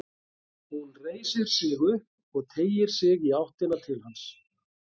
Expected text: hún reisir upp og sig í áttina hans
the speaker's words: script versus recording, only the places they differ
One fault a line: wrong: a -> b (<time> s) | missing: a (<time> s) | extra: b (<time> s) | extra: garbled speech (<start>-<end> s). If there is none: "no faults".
extra: sig (1.6 s)
extra: teygir (2.5 s)
extra: til (3.9 s)